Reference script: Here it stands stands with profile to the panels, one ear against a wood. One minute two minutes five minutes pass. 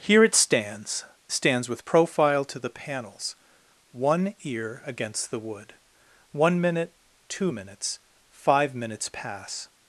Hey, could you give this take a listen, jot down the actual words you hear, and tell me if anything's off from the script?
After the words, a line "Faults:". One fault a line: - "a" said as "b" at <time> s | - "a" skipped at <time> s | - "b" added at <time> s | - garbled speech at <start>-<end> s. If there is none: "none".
Here it stands stands with profile to the panels, one ear against the wood. One minute two minutes five minutes pass.
Faults:
- "a" said as "the" at 5.3 s